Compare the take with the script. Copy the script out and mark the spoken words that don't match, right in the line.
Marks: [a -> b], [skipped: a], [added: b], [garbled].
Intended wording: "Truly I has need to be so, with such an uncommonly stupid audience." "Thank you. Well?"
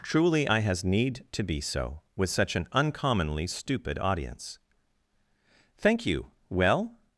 "Truly I has need to be so, with such an uncommonly stupid audience." "Thank you. Well?"